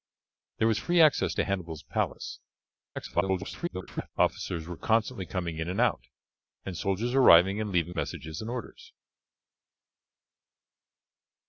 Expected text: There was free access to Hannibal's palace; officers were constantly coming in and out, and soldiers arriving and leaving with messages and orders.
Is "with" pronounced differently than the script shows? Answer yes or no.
yes